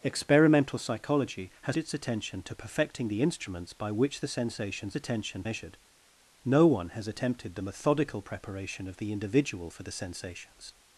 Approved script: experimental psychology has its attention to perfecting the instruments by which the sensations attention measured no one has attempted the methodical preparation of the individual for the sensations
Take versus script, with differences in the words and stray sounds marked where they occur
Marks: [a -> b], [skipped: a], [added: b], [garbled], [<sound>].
experimental psychology has its attention to perfecting the instruments by which the sensations attention measured no one has attempted the methodical preparation of the individual for the sensations